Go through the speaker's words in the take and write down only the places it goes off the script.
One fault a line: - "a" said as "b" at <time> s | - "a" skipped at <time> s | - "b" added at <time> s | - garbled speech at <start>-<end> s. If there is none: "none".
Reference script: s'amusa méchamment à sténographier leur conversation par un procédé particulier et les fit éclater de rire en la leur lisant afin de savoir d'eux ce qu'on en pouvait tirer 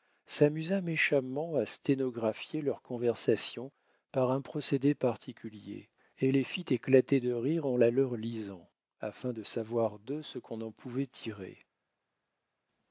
none